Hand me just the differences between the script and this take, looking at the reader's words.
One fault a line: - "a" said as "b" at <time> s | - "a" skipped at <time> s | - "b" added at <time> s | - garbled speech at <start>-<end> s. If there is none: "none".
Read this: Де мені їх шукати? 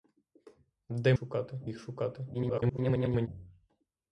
- "мені" said as "шукати" at 1.1 s
- garbled speech at 2.3-3.3 s